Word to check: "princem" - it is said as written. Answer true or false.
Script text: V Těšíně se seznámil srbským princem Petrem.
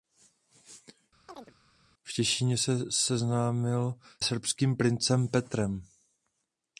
true